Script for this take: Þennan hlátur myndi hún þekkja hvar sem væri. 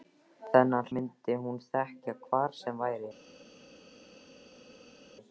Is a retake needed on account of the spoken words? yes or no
yes